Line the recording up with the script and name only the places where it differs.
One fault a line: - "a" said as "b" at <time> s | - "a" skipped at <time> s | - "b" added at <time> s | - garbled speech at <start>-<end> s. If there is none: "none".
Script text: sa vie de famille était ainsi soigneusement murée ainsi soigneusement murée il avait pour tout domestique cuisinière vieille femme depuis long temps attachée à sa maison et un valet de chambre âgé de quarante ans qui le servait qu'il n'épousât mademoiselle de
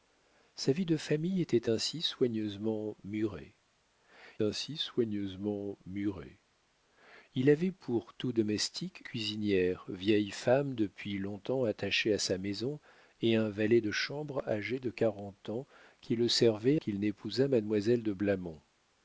none